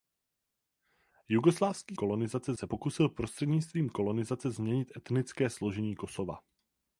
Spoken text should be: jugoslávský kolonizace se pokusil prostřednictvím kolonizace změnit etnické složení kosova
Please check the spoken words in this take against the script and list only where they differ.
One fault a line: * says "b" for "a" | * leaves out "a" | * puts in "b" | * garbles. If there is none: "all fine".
all fine